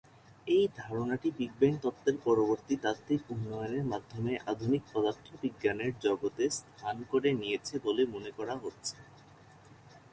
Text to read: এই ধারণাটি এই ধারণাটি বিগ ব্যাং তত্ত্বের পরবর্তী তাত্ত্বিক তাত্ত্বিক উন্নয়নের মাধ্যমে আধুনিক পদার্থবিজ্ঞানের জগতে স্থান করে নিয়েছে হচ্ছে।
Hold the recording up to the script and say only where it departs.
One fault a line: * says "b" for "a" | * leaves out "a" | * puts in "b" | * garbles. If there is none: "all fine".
* leaves out "এই ধারণাটি"
* leaves out "তাত্ত্বিক"
* puts in "বলে মনে করা"